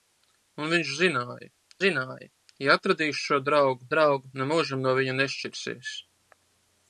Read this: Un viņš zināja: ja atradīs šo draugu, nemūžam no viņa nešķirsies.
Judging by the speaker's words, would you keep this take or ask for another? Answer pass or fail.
fail